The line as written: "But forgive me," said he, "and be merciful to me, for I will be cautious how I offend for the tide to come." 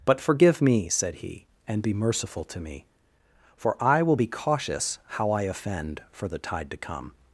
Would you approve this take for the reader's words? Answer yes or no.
yes